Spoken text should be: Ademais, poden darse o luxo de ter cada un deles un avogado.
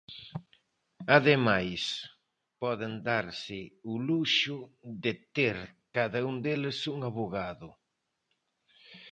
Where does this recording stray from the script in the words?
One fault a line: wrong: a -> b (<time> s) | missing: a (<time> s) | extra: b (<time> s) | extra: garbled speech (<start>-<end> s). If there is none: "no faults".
no faults